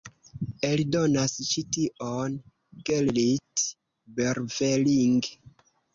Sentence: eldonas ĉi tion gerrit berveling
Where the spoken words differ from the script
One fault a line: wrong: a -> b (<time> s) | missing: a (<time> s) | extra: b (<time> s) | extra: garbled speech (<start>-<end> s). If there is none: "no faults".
no faults